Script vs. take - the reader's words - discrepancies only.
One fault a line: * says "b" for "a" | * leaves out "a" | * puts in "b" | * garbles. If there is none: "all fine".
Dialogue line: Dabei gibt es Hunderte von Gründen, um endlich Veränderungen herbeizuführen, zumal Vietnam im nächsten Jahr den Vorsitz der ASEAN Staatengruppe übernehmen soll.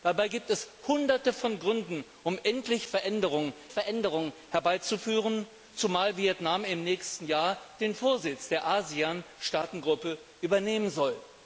* puts in "Veränderungen"